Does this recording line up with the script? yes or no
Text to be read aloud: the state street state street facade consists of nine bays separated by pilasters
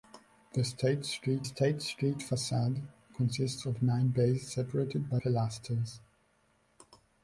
yes